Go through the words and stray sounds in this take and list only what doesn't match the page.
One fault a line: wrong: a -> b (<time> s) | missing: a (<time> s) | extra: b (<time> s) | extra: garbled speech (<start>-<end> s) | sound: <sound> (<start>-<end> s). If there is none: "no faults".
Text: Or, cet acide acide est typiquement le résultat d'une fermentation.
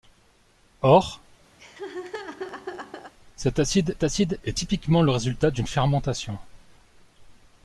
sound: laugh (1.6-3.1 s)